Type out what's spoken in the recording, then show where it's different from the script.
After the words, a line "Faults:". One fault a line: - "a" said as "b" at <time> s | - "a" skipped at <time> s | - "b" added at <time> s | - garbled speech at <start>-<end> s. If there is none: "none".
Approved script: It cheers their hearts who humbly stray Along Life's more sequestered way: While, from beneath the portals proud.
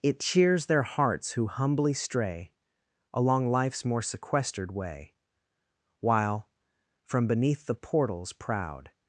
It cheers their hearts who humbly stray Along Life's more sequestered way: While, from beneath the portals proud.
Faults:
none